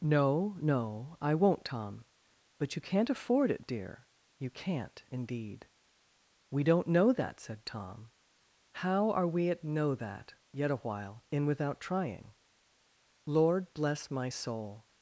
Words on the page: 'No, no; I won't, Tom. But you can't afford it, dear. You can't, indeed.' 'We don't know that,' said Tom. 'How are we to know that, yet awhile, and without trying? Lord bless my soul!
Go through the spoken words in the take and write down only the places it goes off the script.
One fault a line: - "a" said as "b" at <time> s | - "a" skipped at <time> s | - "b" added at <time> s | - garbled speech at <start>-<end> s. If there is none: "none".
- "to" said as "at" at 9.5 s
- "and" said as "in" at 11.3 s